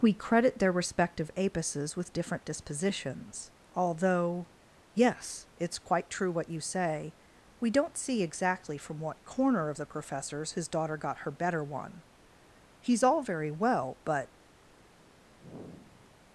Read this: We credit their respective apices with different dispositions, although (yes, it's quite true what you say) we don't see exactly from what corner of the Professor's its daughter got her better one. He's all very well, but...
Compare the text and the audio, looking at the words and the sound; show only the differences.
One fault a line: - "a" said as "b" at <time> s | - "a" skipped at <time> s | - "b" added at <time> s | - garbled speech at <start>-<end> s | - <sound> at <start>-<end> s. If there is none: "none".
- "its" said as "his" at 10.5 s
- sigh at 15.4-16.2 s